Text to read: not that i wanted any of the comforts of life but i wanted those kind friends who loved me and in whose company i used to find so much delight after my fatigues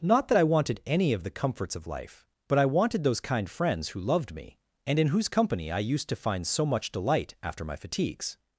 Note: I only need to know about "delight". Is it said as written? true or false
true